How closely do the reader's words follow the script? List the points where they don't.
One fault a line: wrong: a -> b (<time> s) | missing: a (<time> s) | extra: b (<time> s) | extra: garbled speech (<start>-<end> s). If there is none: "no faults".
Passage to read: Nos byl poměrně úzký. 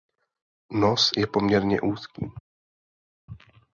wrong: byl -> je (1.2 s)